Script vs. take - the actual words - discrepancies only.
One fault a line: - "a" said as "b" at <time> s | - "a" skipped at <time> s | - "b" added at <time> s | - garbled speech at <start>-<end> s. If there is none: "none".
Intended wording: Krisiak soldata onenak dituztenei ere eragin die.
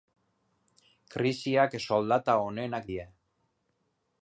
- "dituztenei ere eragin" skipped at 2.9 s